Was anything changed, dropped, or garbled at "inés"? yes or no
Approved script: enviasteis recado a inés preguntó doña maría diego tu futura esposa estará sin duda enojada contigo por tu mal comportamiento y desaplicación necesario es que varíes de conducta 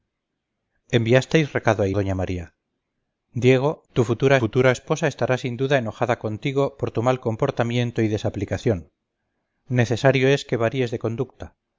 yes